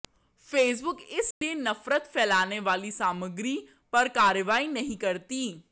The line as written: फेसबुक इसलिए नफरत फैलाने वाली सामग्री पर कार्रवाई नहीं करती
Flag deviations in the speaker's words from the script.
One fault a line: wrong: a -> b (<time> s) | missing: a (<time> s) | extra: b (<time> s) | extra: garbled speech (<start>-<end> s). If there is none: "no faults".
no faults